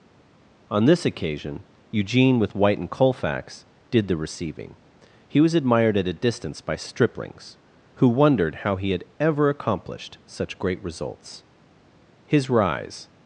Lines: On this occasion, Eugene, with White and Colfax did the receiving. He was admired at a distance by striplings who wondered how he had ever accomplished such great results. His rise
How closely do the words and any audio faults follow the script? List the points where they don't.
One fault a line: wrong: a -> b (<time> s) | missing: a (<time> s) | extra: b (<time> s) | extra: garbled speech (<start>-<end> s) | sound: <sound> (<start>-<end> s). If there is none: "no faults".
no faults